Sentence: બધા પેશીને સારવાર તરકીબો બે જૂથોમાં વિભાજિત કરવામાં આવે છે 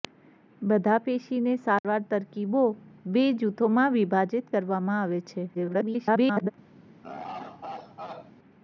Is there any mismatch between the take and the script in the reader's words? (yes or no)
yes